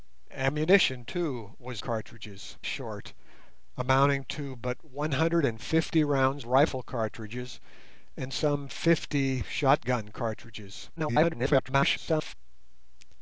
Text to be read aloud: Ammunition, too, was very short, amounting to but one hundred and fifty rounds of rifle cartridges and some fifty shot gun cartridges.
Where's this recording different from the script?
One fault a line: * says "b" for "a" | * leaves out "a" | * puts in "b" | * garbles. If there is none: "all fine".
* says "cartridges" for "very"
* leaves out "of"
* garbles